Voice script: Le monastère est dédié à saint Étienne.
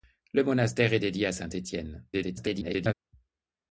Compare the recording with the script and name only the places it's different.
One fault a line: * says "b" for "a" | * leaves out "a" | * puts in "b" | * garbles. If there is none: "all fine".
* garbles